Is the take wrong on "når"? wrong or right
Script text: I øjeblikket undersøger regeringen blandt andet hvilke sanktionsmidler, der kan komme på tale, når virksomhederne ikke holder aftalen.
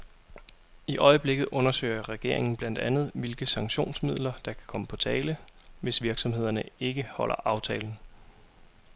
wrong